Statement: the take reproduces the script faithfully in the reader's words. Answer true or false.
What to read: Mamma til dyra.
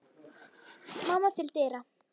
true